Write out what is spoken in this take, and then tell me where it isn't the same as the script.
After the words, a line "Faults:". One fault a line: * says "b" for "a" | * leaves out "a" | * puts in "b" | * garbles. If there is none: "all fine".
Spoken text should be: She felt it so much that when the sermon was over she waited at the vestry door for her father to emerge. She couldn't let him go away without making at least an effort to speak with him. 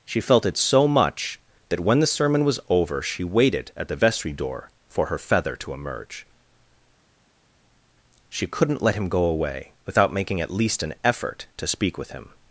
She felt it so much that when the sermon was over she waited at the vestry door for her feather to emerge. She couldn't let him go away without making at least an effort to speak with him.
Faults:
* says "feather" for "father"